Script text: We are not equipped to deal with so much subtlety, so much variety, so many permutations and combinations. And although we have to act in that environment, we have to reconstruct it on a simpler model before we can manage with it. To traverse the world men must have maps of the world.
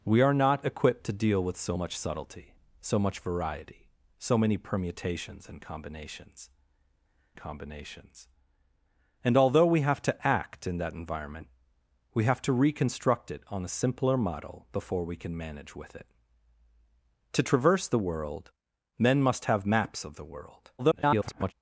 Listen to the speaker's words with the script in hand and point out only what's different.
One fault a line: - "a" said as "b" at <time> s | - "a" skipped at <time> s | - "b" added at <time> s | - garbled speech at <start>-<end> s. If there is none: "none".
- "combinations" added at 7.4 s
- garbled speech at 20.8-21.5 s